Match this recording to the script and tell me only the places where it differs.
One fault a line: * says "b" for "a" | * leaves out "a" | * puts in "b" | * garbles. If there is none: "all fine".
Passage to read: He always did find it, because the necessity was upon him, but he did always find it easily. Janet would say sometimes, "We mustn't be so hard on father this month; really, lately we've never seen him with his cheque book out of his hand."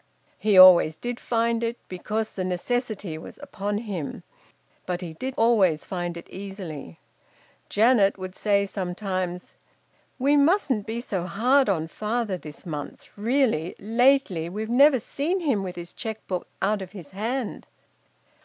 all fine